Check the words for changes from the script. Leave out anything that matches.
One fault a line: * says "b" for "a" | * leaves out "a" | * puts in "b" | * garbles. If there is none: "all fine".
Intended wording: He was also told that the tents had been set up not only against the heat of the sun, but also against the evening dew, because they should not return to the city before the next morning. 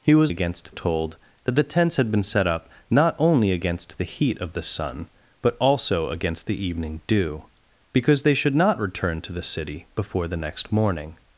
* says "against" for "also"